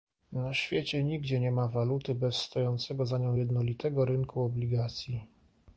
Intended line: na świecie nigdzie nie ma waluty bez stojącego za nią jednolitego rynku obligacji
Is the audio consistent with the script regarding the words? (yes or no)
yes